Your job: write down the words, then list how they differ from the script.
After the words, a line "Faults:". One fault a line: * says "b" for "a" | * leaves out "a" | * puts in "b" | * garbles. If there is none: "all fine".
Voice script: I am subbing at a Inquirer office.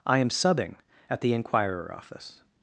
I am subbing at the Inquirer office.
Faults:
* says "the" for "a"